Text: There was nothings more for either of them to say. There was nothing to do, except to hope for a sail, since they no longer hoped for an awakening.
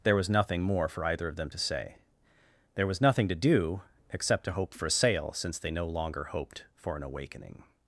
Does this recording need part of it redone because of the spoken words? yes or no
yes